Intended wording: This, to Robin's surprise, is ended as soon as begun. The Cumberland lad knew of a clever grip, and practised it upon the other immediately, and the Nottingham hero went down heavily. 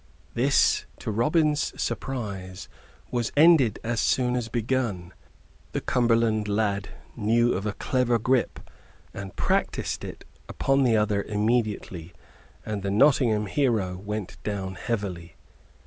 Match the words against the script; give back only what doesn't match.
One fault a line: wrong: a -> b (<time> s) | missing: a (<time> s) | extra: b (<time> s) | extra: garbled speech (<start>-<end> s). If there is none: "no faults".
wrong: is -> was (3.1 s)